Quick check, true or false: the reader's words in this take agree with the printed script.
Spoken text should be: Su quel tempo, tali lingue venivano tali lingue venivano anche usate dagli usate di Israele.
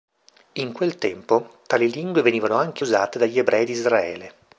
false